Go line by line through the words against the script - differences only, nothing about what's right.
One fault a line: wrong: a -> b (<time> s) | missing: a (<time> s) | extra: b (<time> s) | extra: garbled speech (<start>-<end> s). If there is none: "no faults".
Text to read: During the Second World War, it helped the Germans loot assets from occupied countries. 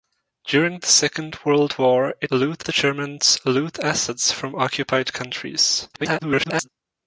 wrong: helped -> loot (2.3 s)
extra: garbled speech (5.9-6.7 s)